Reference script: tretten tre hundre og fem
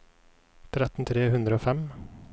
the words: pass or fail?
pass